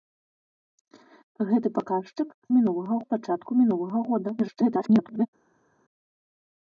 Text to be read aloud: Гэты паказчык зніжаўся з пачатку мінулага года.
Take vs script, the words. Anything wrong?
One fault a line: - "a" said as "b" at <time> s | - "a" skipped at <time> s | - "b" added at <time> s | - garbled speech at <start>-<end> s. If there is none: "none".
- "зніжаўся" said as "мінулага" at 2.6 s
- garbled speech at 4.4-5.3 s